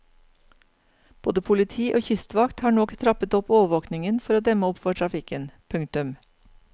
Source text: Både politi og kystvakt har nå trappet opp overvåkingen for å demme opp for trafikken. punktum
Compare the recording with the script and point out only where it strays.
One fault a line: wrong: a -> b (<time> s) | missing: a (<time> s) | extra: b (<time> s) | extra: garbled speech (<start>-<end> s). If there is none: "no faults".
no faults